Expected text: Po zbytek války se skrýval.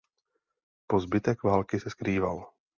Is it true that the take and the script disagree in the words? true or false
false